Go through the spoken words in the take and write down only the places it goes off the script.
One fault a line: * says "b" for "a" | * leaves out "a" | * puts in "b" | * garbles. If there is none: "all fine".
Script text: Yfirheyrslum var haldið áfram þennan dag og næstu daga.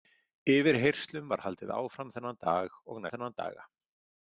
* says "þennan" for "næstu"